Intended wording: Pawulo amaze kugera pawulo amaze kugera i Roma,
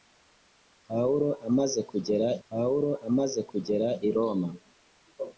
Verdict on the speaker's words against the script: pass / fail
pass